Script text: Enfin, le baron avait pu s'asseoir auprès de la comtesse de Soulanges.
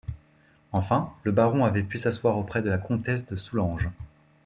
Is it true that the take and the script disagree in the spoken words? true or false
false